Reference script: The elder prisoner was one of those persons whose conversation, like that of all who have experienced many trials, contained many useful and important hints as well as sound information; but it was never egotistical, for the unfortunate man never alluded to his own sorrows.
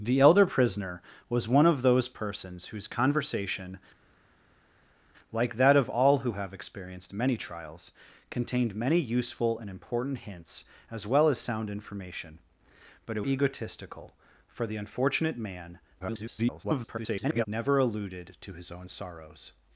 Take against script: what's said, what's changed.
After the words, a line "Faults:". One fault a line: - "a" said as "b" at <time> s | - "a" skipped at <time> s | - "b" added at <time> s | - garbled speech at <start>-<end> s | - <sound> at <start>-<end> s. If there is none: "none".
The elder prisoner was one of those persons whose conversation, like that of all who have experienced many trials, contained many useful and important hints as well as sound information; but it egotistical, for the unfortunate man [garbled] never alluded to his own sorrows.
Faults:
- "was never" skipped at 13.2 s
- garbled speech at 16.0-17.5 s